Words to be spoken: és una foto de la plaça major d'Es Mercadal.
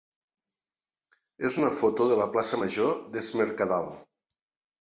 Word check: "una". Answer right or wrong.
right